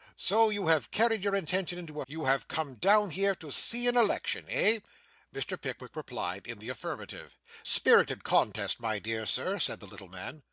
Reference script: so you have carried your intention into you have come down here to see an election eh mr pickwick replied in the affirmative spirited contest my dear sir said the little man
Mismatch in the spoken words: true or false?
false